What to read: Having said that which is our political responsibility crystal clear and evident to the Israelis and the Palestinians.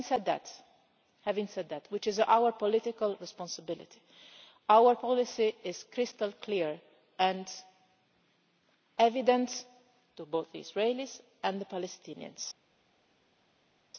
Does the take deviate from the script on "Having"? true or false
false